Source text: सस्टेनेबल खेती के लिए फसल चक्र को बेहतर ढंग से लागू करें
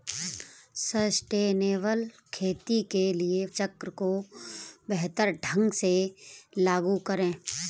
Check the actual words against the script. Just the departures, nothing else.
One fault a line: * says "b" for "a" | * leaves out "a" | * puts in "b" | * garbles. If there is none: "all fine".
* leaves out "फसल"